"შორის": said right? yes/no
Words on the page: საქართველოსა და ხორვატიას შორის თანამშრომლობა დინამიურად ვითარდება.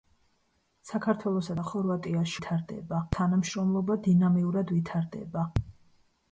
no